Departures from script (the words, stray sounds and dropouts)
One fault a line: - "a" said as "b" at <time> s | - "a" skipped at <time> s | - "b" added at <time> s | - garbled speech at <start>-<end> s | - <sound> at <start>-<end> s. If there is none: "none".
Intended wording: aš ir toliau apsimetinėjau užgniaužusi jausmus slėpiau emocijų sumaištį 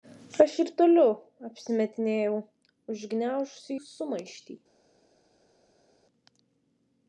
- "jausmus slėpiau emocijų" skipped at 3.8 s